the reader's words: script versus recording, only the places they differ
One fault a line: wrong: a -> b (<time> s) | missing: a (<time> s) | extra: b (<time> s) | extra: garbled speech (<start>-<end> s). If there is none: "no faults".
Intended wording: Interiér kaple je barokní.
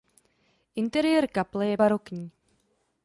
no faults